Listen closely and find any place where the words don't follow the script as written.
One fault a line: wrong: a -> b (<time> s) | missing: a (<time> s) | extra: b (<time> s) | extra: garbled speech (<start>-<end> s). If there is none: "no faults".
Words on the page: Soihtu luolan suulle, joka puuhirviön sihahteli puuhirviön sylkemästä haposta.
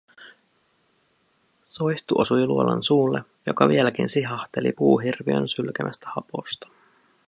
extra: osui (2.2 s)
wrong: puuhirviön -> vieläkin (3.7 s)